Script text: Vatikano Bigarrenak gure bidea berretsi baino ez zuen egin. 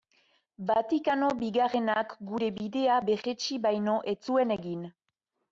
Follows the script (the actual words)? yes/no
yes